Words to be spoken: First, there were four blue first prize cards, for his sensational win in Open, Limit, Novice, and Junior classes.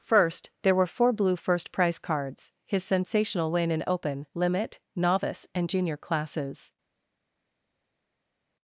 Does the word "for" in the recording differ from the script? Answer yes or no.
yes